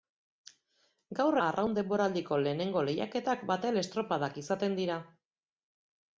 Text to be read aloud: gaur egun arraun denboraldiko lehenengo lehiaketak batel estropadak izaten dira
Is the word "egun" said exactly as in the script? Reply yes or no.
no